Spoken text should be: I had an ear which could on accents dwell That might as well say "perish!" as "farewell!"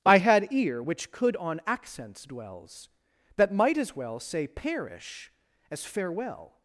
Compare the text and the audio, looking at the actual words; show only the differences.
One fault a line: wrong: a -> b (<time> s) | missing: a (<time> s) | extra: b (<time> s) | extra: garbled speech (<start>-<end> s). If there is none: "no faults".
missing: an (0.5 s)
wrong: dwell -> dwells (2.2 s)